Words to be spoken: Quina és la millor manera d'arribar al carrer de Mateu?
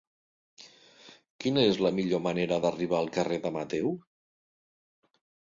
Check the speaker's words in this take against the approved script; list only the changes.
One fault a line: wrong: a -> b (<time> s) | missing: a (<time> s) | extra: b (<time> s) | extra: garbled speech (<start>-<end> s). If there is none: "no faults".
no faults